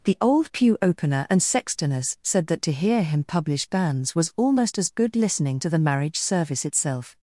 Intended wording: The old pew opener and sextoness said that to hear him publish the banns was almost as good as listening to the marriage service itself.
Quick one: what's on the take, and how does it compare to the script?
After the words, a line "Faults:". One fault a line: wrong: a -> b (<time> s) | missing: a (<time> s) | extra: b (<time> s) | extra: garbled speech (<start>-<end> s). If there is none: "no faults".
The old pew opener and sextoness said that to hear him publish banns was almost as good listening to the marriage service itself.
Faults:
missing: the (3.7 s)
missing: as (5.1 s)